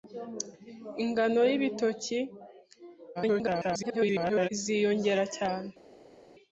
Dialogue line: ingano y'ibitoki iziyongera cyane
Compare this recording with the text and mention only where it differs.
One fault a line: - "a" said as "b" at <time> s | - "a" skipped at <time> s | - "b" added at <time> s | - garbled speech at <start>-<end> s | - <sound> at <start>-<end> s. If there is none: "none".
- garbled speech at 3.1-4.5 s